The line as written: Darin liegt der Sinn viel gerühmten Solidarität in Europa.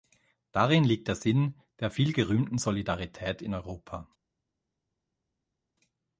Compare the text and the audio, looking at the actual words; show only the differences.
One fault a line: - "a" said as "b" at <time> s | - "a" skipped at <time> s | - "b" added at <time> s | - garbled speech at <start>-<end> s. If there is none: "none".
- "der" added at 1.8 s